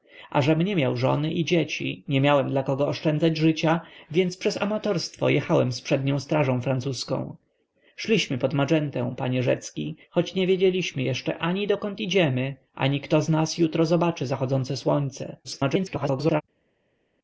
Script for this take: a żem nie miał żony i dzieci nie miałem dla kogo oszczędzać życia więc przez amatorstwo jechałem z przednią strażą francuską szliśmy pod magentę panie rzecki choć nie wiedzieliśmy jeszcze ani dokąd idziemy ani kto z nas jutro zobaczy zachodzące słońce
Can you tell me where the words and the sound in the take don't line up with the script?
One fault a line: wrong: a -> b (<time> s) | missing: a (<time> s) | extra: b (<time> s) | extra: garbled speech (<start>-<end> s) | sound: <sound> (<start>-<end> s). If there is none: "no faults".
extra: garbled speech (15.4-16.4 s)